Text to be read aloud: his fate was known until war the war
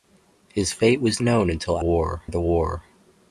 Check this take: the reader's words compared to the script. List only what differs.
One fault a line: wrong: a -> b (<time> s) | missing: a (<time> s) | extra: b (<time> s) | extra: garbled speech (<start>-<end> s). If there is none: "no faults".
no faults